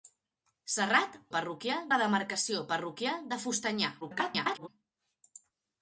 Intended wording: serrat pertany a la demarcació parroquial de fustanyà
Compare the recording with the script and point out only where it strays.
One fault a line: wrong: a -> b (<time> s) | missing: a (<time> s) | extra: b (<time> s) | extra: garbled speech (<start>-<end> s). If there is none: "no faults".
wrong: pertany -> parroquial (1.4 s)
extra: garbled speech (4.0-4.7 s)